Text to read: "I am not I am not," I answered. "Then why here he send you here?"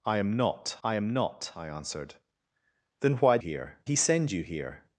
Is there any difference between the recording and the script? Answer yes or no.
no